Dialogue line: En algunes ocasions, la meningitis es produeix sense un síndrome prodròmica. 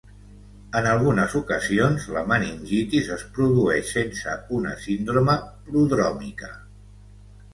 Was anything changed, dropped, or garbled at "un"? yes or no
yes